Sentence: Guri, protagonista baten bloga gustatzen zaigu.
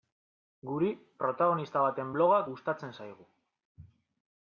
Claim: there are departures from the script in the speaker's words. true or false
false